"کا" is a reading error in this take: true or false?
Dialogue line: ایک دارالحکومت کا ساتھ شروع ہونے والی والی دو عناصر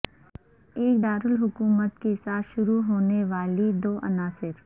true